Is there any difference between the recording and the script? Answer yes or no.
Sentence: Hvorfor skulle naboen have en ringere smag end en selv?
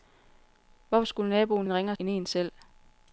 yes